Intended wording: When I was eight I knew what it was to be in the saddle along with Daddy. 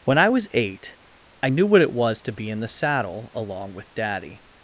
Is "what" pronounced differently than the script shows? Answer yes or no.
no